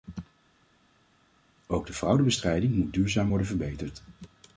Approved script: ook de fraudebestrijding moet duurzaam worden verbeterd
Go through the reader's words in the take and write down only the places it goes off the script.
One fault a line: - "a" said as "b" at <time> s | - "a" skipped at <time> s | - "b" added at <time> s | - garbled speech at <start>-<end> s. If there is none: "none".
none